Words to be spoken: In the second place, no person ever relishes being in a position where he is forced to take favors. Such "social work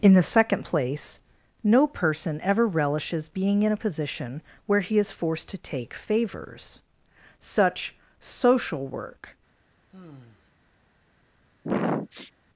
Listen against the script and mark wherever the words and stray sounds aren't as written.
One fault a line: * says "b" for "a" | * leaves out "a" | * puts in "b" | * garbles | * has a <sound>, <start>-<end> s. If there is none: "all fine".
* has a sigh, 9.9-10.5 s
* has a sniff, 11.6-12.3 s